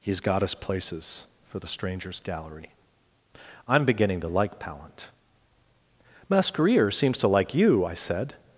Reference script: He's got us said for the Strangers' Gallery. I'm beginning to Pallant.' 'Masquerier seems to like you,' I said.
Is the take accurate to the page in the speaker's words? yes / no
no